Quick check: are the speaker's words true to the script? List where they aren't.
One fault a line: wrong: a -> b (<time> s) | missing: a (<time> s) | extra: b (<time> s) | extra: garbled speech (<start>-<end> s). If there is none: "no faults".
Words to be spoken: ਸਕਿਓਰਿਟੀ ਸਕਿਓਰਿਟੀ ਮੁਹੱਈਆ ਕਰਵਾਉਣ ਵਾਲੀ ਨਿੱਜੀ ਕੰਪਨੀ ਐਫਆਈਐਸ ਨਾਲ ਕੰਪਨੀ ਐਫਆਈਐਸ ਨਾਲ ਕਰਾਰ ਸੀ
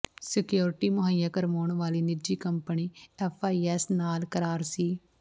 missing: ਸਕਿਓਰਿਟੀ (0.9 s)
missing: ਕੰਪਨੀ ਐਫਆਈਐਸ ਨਾਲ (4.2 s)